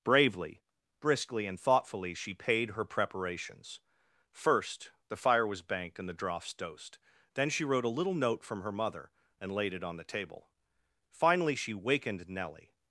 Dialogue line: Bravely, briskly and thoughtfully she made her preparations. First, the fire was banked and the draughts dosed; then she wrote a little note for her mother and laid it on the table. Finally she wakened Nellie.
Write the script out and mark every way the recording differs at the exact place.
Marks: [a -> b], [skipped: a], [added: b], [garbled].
Bravely, briskly and thoughtfully she [made -> paid] her preparations. First, the fire was banked and the draughts dosed; then she wrote a little note [for -> from] her mother and laid it on the table. Finally she wakened Nellie.